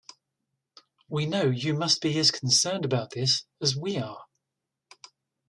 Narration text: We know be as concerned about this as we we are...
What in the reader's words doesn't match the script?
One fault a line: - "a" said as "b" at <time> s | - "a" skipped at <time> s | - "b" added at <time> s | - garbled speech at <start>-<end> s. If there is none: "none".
- "you must" added at 1.4 s
- "we" skipped at 4.0 s